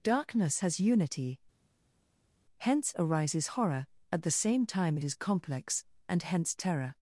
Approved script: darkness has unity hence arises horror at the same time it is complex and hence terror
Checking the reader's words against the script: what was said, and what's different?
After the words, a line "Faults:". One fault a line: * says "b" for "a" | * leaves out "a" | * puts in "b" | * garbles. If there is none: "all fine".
darkness has unity hence arises horror at the same time it is complex and hence terror
Faults:
all fine